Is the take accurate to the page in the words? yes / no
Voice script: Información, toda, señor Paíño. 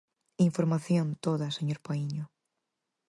yes